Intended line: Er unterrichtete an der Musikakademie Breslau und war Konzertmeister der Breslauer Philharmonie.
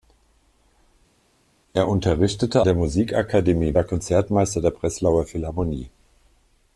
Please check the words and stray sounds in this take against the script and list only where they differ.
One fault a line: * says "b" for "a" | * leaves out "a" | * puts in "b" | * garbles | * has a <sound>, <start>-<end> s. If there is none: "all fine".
* leaves out "an"
* leaves out "Breslau und"